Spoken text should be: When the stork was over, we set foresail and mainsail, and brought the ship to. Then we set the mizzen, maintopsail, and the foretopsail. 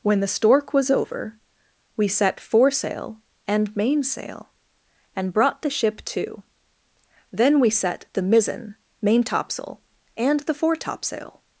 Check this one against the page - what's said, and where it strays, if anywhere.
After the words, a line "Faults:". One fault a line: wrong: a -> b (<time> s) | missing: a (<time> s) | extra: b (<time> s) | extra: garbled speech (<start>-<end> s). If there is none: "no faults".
When the stork was over, we set foresail and mainsail, and brought the ship to. Then we set the mizzen, maintopsail, and the foretopsail.
Faults:
no faults